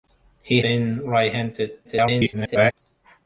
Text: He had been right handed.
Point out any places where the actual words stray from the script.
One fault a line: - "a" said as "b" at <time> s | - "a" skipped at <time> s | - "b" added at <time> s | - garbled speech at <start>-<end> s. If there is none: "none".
- "had" skipped at 0.6 s
- garbled speech at 1.8-2.7 s